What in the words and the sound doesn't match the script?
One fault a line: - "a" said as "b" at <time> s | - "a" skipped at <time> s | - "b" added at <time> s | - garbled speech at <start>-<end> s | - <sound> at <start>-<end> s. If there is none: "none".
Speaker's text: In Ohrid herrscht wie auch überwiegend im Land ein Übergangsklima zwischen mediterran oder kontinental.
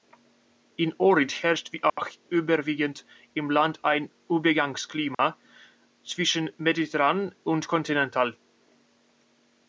- dropout at 1.9-2.0 s
- dropout at 5.1-5.2 s
- "oder" said as "und" at 7.4 s